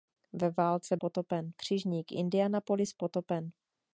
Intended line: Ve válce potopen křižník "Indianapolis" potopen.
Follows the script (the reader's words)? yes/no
yes